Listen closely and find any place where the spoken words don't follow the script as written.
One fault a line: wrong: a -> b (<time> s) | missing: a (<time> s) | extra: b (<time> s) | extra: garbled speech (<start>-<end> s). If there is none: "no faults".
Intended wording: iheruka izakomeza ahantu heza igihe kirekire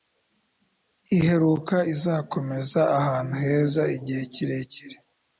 no faults